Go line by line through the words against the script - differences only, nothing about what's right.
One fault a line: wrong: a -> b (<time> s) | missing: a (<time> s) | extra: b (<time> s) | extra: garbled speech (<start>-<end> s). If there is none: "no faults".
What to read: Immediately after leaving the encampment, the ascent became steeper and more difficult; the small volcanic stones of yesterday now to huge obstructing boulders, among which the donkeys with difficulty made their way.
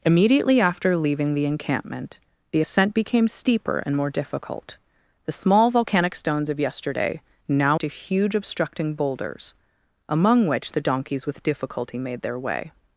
no faults